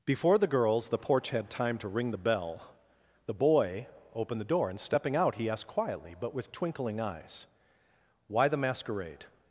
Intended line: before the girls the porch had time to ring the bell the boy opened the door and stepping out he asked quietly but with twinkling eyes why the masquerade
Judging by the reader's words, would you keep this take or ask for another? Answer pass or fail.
pass